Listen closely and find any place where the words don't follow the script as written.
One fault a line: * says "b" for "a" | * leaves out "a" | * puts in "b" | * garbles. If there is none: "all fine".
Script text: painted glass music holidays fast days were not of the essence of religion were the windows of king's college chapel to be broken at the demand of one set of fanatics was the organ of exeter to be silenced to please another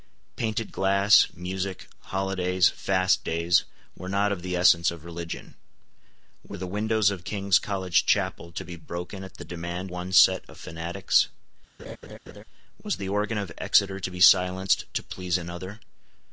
* leaves out "of"